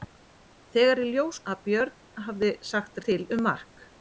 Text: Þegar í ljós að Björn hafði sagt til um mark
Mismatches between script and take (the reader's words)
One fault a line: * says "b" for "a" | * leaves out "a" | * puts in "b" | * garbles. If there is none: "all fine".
all fine